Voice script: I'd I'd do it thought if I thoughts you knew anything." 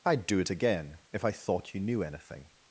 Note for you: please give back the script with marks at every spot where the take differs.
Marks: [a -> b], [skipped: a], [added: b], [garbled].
I'd [skipped: I'd] do it [thought -> again] if I [thoughts -> thought] you knew anything."